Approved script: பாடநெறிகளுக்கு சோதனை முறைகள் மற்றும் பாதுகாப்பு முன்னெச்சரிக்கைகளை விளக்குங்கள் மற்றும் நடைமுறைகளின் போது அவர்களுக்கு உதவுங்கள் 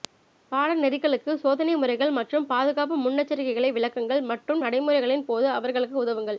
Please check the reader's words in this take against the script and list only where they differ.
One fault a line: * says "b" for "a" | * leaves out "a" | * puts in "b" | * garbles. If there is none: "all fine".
all fine